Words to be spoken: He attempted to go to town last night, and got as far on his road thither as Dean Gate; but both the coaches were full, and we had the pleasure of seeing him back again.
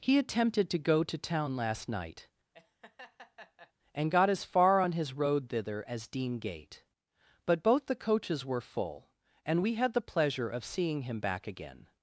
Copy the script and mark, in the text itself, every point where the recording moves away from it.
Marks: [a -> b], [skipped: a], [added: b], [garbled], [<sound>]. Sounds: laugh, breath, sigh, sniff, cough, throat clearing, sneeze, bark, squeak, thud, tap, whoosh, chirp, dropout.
He attempted to go to town last night, [laugh] and got as far on his road thither as Dean Gate; but both the coaches were full, and we had the pleasure of seeing him back again.